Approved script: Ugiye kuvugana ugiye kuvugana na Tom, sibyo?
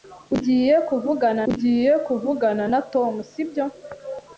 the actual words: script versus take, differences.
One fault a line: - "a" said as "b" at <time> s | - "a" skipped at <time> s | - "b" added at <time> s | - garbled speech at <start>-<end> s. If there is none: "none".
none